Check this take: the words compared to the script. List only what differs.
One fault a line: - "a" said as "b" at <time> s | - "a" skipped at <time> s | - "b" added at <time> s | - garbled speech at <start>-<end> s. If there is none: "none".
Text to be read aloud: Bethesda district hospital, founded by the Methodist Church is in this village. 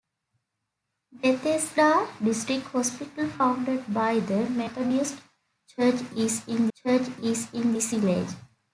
- "Church is in" added at 6.7 s